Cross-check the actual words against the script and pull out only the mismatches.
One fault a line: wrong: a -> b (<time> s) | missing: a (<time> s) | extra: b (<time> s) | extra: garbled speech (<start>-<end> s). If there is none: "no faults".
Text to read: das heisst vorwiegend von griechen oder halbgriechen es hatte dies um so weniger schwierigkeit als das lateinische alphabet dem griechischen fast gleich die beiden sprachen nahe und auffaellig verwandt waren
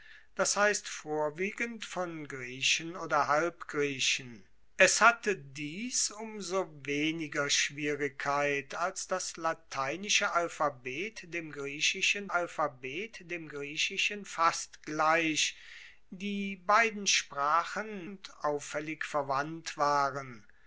extra: alphabet dem griechischen (12.3 s)
missing: nahe (18.1 s)